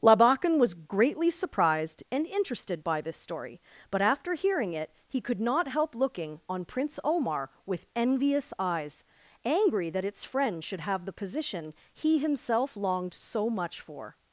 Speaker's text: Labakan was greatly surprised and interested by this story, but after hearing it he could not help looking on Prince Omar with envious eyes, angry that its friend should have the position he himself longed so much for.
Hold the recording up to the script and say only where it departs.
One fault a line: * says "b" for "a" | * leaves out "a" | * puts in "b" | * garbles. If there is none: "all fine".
all fine